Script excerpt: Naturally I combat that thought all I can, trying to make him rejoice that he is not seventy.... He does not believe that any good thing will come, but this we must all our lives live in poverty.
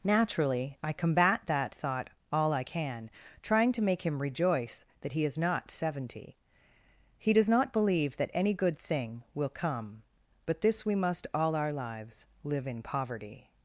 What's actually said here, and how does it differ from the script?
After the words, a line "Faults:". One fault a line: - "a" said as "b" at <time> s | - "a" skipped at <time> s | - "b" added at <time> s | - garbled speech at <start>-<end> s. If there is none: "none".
Naturally I combat that thought all I can, trying to make him rejoice that he is not seventy.... He does not believe that any good thing will come, but this we must all our lives live in poverty.
Faults:
none